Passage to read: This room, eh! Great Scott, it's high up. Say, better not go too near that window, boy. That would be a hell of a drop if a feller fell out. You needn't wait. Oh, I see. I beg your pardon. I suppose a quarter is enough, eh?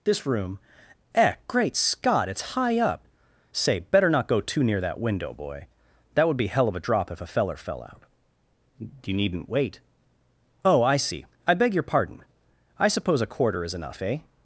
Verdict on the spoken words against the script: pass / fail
fail